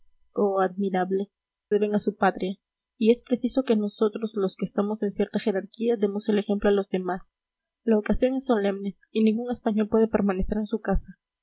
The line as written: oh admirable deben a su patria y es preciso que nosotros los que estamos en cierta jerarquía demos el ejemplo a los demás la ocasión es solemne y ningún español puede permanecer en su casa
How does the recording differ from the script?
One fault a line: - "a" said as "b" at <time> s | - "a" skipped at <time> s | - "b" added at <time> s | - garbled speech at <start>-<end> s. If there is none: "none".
none